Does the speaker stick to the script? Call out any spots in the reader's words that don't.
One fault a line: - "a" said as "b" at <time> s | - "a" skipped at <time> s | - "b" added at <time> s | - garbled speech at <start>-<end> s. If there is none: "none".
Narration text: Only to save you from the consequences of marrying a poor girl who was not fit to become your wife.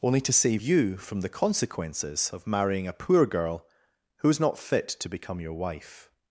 - "was" said as "is" at 4.3 s